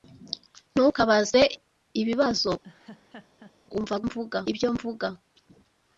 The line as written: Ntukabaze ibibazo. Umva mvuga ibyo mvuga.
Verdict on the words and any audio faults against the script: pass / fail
fail